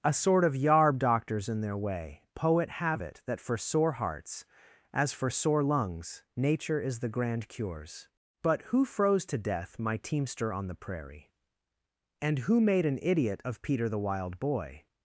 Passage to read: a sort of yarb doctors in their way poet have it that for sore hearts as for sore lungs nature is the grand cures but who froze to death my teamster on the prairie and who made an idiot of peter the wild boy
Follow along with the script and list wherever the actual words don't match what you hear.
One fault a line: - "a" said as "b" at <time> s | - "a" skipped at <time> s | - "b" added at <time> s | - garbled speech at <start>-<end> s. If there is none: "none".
none